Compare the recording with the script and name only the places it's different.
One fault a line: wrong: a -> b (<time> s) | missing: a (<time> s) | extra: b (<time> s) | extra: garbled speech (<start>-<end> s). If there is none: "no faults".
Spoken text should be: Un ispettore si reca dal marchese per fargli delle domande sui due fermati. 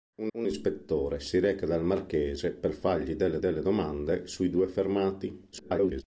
extra: un (0.4 s)
extra: delle (3.4 s)
extra: garbled speech (5.5-6.0 s)